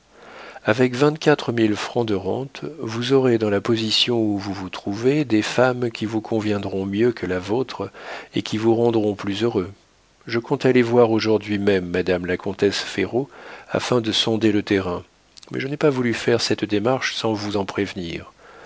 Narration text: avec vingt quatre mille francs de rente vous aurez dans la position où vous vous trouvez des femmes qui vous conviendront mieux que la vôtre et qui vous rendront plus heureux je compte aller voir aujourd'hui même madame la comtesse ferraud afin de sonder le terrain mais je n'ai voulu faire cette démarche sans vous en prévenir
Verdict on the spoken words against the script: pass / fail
fail